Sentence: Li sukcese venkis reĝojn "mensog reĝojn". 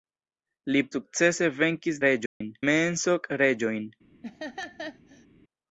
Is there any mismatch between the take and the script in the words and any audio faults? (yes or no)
yes